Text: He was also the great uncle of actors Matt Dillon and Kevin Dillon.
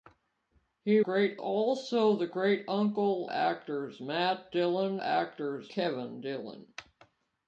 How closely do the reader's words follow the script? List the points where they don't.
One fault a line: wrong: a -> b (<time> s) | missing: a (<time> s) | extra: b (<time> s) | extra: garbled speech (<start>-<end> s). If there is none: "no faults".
wrong: was -> great (1.0 s)
missing: of (3.3 s)
wrong: and -> actors (5.0 s)